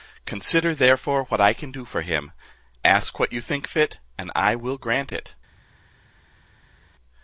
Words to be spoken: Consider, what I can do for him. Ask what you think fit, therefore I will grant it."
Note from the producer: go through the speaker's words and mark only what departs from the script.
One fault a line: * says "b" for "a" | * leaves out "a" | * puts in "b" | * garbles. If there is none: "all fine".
* puts in "therefore"
* says "and" for "therefore"